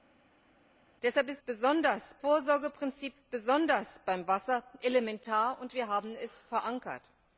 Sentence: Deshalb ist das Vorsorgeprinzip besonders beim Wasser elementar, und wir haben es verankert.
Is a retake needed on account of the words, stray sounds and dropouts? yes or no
yes